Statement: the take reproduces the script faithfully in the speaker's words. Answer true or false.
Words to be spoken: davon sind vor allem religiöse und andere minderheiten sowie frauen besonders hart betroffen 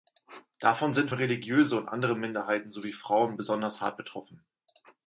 false